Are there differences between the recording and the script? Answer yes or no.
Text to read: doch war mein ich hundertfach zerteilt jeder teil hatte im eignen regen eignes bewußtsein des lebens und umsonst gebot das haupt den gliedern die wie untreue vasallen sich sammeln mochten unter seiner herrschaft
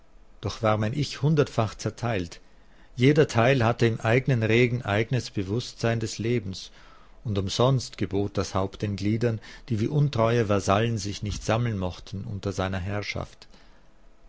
yes